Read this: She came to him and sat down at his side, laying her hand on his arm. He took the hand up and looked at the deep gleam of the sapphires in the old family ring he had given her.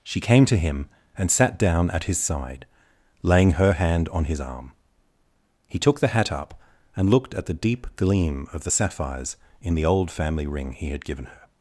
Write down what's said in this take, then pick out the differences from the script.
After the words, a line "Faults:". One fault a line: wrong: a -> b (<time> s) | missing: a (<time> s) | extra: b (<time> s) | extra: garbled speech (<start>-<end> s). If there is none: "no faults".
She came to him and sat down at his side, laying her hand on his arm. He took the hat up and looked at the deep gleam of the sapphires in the old family ring he had given her.
Faults:
wrong: hand -> hat (6.1 s)